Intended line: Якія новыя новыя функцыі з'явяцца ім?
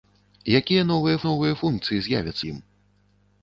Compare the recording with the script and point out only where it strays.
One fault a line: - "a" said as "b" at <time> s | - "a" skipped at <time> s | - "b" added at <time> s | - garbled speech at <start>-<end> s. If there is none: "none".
none